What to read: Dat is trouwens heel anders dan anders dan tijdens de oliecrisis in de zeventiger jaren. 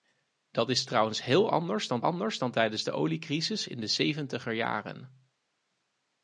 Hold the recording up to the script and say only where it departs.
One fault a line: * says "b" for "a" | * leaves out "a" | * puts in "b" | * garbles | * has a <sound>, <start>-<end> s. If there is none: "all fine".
all fine